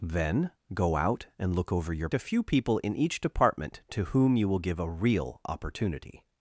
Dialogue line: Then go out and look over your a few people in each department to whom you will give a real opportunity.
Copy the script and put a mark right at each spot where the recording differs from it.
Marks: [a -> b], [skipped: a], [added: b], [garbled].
Then go out and look over your a few people in each department to whom you will give a real opportunity.